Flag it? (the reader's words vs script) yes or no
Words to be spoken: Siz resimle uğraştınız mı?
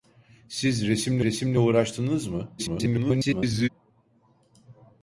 yes